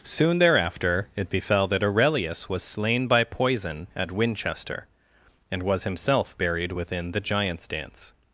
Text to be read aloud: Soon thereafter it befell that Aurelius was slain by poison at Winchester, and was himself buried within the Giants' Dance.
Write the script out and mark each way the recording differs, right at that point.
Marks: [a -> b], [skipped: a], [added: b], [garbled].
Soon thereafter it befell that Aurelius was slain by poison at Winchester, and was himself buried within the Giants' Dance.